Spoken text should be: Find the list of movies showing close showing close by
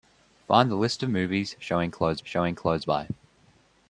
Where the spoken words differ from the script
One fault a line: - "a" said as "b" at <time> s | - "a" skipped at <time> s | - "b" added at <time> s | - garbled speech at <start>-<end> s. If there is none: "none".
none